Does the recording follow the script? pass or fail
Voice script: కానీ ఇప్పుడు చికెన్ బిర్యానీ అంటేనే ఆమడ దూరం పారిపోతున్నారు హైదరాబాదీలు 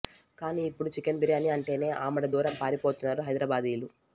pass